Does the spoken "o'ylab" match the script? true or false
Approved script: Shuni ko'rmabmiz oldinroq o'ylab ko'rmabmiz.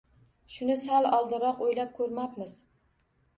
true